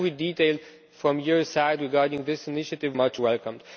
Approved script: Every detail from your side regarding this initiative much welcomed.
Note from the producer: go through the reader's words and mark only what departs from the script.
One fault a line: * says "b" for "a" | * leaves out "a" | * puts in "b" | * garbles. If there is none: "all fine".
all fine